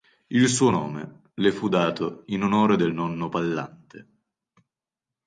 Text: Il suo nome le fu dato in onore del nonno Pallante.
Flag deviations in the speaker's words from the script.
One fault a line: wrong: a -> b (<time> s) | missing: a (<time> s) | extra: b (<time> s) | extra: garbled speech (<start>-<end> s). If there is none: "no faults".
no faults